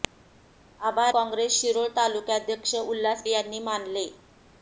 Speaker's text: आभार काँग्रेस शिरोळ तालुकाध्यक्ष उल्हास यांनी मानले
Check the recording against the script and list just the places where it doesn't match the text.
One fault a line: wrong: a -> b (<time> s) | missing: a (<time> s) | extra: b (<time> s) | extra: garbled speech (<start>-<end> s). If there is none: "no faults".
no faults